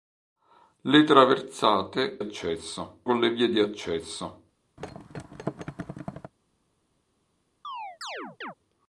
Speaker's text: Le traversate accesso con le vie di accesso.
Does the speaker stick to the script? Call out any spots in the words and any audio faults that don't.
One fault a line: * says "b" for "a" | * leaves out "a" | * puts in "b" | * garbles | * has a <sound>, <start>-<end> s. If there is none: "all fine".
* has a thud, 4.8-6.3 s
* has a chirp, 7.6-8.5 s